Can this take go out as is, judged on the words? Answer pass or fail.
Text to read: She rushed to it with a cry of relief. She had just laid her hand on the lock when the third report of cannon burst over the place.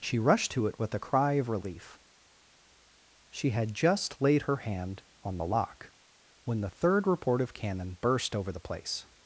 pass